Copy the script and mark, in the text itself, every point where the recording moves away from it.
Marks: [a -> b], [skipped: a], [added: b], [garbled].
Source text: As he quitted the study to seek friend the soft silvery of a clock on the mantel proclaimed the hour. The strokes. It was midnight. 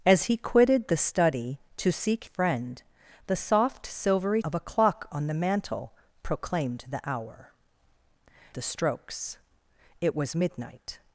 As he quitted the study to seek friend the soft silvery of a clock on the mantel proclaimed the hour. The strokes. It was midnight.